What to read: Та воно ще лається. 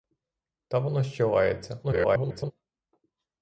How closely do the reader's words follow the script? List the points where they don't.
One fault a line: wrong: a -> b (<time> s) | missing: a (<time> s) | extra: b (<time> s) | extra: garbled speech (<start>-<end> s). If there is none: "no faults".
extra: garbled speech (1.8-2.5 s)